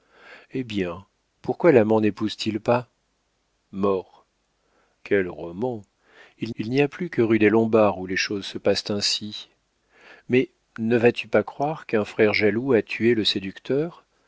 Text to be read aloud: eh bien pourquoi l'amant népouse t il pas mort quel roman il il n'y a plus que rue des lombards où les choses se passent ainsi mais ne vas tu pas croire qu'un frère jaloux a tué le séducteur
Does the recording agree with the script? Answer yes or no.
yes